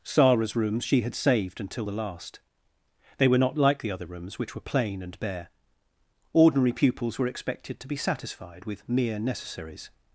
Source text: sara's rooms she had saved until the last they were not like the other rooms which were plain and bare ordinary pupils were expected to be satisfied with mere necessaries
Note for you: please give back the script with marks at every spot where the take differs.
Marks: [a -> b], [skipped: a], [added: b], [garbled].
sara's rooms she had saved until the last they were not like the other rooms which were plain and bare ordinary pupils were expected to be satisfied with mere necessaries